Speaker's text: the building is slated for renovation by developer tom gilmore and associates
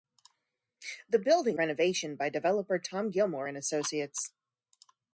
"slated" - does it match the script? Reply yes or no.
no